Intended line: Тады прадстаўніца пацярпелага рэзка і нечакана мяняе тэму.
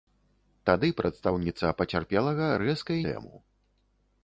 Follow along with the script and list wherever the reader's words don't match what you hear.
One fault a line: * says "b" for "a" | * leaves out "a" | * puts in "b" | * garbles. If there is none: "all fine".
* leaves out "нечакана мяняе"